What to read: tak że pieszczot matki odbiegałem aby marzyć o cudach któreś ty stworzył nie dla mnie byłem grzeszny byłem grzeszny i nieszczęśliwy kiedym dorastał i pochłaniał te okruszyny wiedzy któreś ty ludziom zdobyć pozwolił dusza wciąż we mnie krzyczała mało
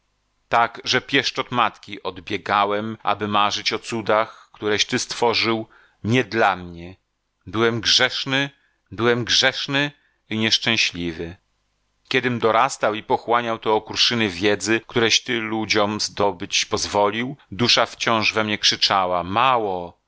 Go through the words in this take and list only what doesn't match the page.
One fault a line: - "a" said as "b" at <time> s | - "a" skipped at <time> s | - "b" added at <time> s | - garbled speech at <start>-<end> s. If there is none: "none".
none